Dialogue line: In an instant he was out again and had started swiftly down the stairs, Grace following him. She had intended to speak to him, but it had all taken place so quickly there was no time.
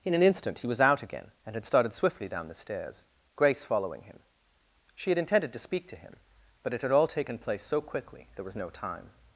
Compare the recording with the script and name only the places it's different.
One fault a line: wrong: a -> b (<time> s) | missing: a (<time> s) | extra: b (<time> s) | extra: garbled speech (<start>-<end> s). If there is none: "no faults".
no faults